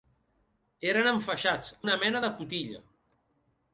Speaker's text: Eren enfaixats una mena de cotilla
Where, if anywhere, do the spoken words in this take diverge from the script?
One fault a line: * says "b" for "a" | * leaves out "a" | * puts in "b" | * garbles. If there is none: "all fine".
all fine